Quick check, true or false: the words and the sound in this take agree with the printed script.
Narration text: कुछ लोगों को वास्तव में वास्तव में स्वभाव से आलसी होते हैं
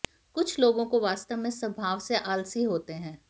false